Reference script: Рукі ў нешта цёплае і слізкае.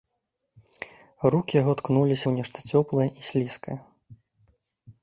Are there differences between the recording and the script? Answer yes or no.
yes